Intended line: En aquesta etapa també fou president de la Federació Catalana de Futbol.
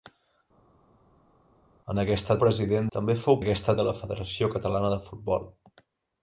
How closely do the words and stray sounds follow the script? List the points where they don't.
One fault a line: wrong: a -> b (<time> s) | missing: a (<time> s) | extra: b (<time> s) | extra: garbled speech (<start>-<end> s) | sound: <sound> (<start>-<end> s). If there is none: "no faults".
wrong: etapa -> president (2.4 s)
wrong: president -> aquesta (3.4 s)